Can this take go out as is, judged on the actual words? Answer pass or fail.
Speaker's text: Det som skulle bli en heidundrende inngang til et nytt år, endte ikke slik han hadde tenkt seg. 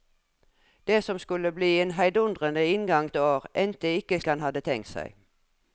fail